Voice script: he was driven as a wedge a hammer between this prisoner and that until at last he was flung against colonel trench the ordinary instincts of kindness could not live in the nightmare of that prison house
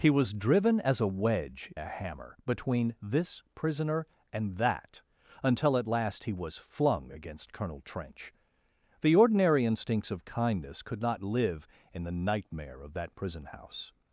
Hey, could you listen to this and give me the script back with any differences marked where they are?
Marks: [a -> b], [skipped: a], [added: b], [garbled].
he was driven as a wedge a hammer between this prisoner and that until at last he was flung against colonel trench the ordinary instincts of kindness could not live in the nightmare of that prison house